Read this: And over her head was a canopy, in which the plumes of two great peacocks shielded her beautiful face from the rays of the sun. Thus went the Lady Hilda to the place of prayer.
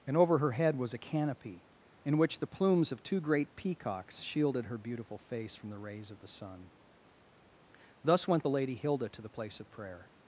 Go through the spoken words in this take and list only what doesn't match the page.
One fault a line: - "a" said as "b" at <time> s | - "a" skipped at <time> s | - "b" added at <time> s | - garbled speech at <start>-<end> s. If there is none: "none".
none